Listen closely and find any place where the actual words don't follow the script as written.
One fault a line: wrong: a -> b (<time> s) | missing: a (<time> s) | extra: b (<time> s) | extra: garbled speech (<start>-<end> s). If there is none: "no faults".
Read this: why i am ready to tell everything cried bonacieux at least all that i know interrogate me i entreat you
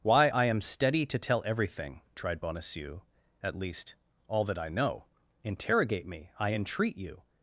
wrong: ready -> steady (0.6 s)
wrong: cried -> tried (2.1 s)